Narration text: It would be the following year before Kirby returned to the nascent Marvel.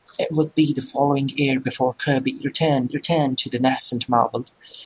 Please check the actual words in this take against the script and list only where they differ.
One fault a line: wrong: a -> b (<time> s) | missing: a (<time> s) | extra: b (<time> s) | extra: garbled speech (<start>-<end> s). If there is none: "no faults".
extra: returned (2.9 s)